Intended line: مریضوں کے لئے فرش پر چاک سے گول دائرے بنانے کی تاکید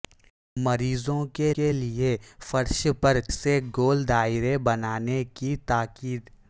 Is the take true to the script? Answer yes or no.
no